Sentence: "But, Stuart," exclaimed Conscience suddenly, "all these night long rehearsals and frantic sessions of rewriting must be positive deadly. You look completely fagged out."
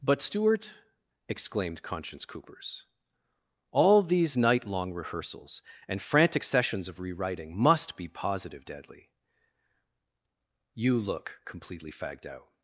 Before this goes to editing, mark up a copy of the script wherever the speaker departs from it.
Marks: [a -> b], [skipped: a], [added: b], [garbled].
"But, Stuart," exclaimed Conscience [suddenly, -> coopers] "all these night long rehearsals and frantic sessions of rewriting must be positive deadly. You look completely fagged out."